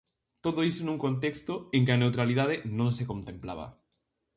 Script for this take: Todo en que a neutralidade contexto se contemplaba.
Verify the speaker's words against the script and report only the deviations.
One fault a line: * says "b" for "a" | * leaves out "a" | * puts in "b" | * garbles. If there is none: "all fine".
* puts in "iso nun contexto"
* says "non" for "contexto"